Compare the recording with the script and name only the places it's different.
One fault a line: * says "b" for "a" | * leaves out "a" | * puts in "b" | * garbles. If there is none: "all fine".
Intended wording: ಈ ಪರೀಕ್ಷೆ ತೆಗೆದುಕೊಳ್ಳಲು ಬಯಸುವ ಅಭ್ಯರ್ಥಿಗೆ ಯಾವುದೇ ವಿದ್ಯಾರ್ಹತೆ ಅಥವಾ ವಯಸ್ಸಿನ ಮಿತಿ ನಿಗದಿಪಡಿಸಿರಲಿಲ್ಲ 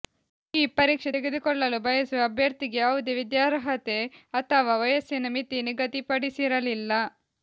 all fine